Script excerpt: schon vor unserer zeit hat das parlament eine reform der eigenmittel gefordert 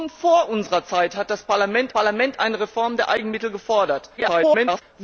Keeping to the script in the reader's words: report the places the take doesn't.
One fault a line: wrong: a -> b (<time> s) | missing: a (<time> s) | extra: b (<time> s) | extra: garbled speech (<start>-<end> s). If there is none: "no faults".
extra: parlament (1.9 s)
extra: garbled speech (4.2-4.8 s)